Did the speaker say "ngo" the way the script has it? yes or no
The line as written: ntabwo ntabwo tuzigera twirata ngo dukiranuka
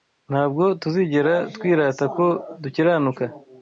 no